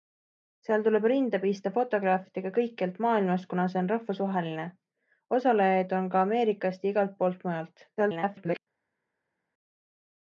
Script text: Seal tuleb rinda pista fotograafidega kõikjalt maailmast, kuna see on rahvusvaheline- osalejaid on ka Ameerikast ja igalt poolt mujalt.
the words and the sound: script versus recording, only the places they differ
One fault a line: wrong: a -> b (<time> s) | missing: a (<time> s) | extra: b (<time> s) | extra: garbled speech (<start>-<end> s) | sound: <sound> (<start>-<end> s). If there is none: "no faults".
extra: garbled speech (8.0-8.6 s)